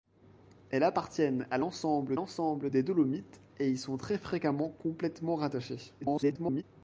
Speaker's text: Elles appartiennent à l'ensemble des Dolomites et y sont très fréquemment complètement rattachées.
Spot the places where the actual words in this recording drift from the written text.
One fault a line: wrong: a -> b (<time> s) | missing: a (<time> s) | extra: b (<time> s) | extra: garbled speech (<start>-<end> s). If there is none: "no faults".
extra: l'ensemble (2.1 s)
extra: garbled speech (6.0-6.6 s)